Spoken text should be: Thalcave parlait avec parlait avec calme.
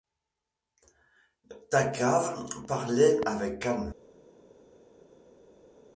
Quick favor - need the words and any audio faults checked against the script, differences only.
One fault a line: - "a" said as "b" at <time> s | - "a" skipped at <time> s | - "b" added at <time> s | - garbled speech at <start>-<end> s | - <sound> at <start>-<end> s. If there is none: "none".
- "parlait avec" skipped at 3.6 s